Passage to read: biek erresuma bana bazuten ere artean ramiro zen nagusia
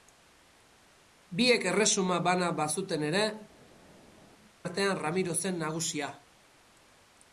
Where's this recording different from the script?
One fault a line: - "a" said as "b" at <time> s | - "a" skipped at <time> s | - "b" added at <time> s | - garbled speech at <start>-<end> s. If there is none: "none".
none